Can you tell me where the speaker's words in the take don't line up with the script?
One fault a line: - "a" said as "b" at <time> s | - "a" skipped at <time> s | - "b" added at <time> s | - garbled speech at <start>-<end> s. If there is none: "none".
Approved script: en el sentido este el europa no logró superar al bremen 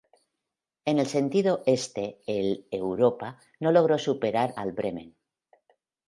none